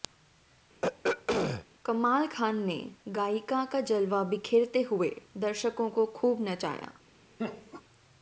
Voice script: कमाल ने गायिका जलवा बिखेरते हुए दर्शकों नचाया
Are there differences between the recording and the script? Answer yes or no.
yes